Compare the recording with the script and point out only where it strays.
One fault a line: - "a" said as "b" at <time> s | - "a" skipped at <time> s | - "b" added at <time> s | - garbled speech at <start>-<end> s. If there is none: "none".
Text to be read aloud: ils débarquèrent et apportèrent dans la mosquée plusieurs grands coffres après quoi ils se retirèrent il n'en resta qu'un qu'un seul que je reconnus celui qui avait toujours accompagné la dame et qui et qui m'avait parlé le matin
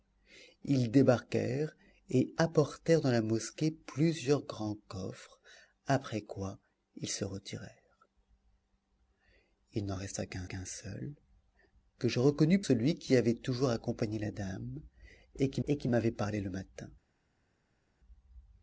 none